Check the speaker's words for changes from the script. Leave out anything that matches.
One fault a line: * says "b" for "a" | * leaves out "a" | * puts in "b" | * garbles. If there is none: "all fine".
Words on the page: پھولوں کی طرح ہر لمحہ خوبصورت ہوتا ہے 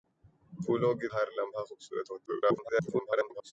* leaves out "طرح"
* garbles